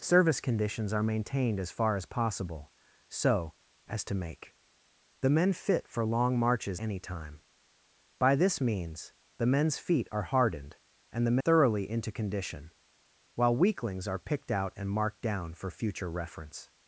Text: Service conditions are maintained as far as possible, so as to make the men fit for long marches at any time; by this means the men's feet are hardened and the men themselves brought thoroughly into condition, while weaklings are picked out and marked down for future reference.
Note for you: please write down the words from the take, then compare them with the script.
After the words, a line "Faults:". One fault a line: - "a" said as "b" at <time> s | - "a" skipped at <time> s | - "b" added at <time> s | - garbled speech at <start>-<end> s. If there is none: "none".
Service conditions are maintained as far as possible, so as to make the men fit for long marches any time; by this means the men's feet are hardened and the thoroughly into condition, while weaklings are picked out and marked down for future reference.
Faults:
- "at" skipped at 6.8 s
- "men themselves brought" skipped at 11.4 s